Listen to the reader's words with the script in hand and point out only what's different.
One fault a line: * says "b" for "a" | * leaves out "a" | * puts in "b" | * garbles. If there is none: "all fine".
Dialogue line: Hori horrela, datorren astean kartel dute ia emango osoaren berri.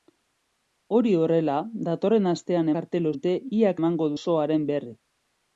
all fine